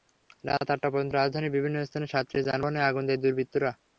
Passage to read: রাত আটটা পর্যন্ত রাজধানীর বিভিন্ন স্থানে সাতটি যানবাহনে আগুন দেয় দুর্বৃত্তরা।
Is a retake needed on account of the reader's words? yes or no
no